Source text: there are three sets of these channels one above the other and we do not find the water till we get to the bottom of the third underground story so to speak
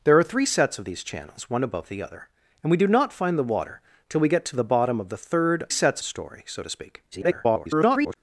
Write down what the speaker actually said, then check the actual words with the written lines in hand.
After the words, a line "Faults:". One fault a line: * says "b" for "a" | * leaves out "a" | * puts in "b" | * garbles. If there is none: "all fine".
there are three sets of these channels one above the other and we do not find the water till we get to the bottom of the third sets story so to speak [garbled]
Faults:
* says "sets" for "underground"
* garbles